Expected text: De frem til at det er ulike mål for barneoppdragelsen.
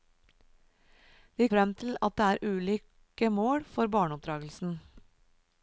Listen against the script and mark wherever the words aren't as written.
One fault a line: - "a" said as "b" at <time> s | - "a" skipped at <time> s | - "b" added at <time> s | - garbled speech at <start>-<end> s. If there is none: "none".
none